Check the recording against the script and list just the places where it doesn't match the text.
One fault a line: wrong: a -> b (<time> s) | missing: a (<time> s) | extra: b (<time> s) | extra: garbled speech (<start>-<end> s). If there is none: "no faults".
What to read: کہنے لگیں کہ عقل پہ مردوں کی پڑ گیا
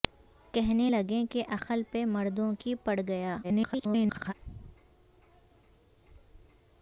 extra: garbled speech (3.4-4.3 s)